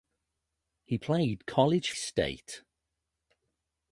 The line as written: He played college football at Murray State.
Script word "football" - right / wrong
wrong